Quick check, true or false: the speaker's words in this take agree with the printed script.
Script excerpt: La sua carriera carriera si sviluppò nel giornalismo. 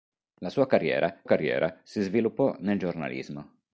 true